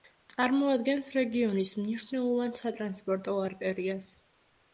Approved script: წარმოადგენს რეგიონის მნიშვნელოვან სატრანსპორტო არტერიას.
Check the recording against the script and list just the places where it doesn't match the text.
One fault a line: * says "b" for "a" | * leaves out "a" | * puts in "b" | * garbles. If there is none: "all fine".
all fine